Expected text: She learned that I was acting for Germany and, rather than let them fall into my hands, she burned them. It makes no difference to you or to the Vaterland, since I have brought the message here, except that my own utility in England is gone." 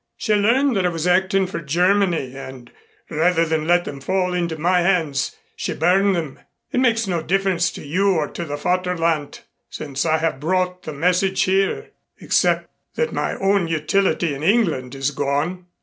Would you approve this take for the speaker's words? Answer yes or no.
yes